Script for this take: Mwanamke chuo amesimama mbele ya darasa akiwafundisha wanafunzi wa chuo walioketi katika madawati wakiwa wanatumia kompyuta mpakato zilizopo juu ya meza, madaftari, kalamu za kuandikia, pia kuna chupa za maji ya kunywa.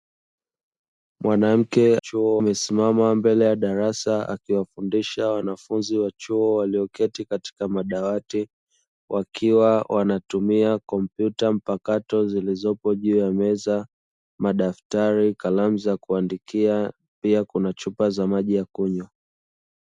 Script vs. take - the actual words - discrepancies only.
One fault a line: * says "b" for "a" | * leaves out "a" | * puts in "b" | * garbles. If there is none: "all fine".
all fine